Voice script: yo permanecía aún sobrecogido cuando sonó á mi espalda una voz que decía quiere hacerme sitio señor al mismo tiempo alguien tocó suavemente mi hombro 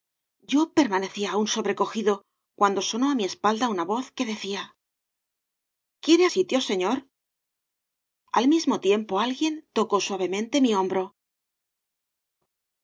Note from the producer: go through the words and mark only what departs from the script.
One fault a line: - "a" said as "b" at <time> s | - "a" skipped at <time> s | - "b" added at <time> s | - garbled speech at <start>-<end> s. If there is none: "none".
- "hacerme" skipped at 6.2 s